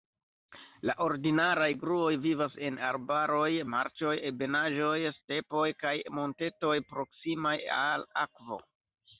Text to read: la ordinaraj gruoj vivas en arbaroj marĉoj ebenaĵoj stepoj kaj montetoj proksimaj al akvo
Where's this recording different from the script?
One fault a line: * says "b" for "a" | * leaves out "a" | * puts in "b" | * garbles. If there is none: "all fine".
all fine